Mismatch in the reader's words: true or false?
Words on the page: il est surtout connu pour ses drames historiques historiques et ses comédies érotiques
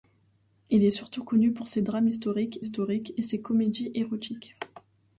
false